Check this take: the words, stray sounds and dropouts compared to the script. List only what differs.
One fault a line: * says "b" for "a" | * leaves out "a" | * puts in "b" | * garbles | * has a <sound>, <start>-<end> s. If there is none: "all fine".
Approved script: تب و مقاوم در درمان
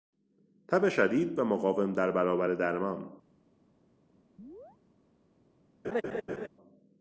* puts in "شدید"
* puts in "برابر"
* has a chirp, 4.4-4.8 s
* has a laugh, 5.8-6.5 s